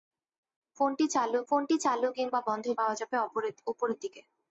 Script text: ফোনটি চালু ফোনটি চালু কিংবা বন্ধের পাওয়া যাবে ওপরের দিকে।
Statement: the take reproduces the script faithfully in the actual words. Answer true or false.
true